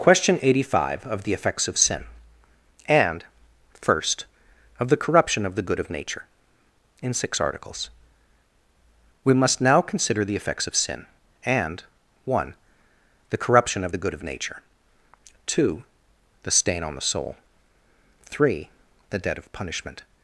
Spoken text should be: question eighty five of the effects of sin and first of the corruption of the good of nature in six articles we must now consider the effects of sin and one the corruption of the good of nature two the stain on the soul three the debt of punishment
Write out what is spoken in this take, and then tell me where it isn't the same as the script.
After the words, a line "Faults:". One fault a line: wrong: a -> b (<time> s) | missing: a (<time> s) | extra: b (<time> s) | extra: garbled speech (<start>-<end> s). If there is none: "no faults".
question eighty five of the effects of sin and first of the corruption of the good of nature in six articles we must now consider the effects of sin and one the corruption of the good of nature two the stain on the soul three the debt of punishment
Faults:
no faults